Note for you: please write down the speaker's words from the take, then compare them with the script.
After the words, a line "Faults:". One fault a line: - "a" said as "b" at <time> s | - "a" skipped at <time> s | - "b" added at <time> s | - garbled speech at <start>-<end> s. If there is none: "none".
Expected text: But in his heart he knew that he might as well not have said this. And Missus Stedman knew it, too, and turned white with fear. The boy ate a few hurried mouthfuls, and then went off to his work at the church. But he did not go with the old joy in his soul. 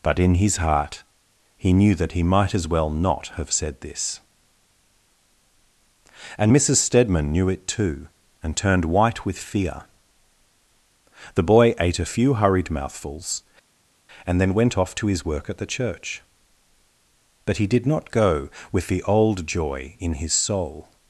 But in his heart he knew that he might as well not have said this. And Missus Stedman knew it, too, and turned white with fear. The boy ate a few hurried mouthfuls, and then went off to his work at the church. But he did not go with the old joy in his soul.
Faults:
none